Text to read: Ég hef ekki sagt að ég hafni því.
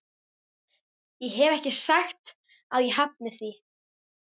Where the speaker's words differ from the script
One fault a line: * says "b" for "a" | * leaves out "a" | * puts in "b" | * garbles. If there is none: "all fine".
all fine